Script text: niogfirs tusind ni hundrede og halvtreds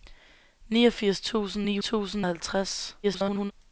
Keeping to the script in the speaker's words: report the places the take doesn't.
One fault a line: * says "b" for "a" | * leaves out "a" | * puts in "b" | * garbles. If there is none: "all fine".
* says "tusind" for "hundrede"
* garbles